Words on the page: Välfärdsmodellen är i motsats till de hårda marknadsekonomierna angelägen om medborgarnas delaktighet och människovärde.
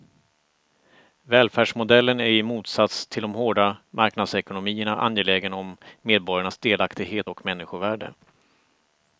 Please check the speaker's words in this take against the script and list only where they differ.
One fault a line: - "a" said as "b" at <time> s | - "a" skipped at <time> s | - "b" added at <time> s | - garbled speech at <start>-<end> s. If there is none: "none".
none